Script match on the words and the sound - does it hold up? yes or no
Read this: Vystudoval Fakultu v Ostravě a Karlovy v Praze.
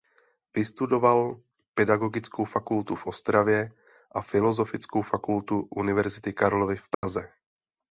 no